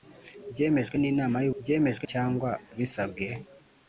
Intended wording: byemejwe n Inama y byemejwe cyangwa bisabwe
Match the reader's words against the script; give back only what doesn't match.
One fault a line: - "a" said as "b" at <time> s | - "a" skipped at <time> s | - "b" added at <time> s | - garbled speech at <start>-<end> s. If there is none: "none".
none